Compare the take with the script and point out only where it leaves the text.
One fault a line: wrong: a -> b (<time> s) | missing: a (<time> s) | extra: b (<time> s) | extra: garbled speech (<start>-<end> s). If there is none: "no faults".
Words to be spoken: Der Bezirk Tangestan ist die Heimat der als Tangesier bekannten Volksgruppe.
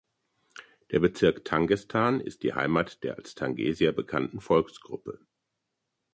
no faults